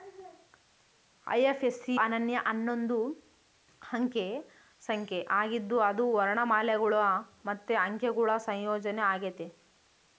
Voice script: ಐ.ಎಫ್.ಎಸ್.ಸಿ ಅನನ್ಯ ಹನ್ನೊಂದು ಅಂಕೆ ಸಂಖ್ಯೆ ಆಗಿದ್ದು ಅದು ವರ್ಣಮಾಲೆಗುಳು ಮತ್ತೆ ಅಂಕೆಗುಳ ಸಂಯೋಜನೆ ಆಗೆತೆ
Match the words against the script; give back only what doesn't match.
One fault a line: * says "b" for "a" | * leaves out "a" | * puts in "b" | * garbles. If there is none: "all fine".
all fine